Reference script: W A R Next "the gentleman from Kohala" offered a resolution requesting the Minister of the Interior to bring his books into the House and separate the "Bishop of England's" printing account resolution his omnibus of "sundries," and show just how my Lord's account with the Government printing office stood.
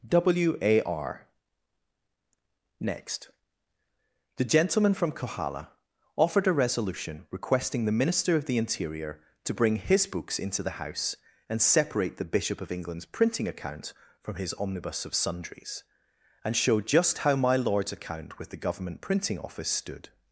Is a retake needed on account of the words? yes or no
yes